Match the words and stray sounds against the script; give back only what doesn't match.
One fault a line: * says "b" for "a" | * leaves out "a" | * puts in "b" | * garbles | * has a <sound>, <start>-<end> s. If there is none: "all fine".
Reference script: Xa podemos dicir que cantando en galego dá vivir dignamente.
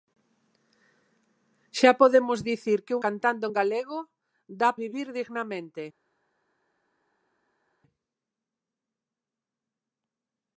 all fine